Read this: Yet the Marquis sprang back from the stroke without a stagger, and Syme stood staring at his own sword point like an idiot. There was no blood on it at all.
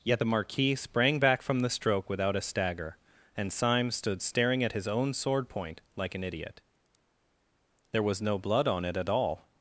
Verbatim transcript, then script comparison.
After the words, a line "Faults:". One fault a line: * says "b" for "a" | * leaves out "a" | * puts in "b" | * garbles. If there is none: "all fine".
Yet the Marquis sprang back from the stroke without a stagger, and Syme stood staring at his own sword point like an idiot. There was no blood on it at all.
Faults:
all fine